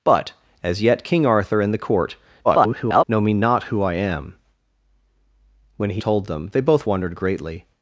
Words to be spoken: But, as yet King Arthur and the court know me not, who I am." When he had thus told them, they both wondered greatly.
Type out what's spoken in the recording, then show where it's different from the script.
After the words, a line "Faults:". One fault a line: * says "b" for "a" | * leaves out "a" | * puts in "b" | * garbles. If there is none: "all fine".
But, as yet King Arthur and the court [garbled] know me not, who I am." When he told them, they both wondered greatly.
Faults:
* garbles
* leaves out "had thus"